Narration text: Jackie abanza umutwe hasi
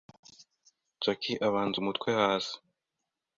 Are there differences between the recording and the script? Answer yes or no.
no